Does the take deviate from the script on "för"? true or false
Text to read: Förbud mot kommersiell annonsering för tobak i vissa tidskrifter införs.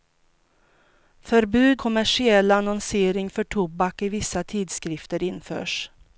false